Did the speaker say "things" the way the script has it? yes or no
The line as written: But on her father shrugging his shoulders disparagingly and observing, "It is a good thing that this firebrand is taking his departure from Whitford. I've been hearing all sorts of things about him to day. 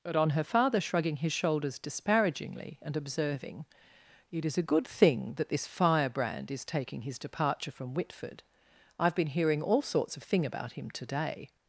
no